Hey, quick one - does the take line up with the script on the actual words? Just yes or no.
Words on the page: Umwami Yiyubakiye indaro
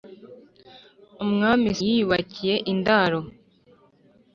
yes